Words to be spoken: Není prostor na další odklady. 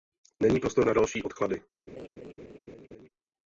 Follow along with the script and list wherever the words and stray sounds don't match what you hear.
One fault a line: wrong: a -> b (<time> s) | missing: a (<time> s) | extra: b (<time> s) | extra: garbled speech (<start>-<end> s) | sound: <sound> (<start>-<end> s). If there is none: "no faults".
sound: laugh (1.9-3.1 s)